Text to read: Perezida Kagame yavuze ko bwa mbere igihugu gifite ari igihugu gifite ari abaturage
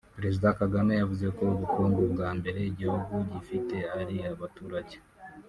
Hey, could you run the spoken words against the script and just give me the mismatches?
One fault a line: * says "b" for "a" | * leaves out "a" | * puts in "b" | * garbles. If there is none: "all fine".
* puts in "ubukungu"
* leaves out "igihugu gifite ari"